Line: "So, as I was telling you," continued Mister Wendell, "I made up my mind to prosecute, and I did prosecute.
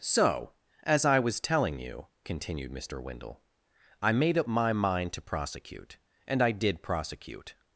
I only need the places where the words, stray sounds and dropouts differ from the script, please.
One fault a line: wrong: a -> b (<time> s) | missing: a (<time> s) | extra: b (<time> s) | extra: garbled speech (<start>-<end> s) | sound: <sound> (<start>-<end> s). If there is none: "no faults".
no faults